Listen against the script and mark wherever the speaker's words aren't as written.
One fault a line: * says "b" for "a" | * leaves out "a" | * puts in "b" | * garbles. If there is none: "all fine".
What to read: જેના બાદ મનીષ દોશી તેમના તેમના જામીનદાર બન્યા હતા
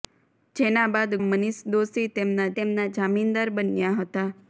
all fine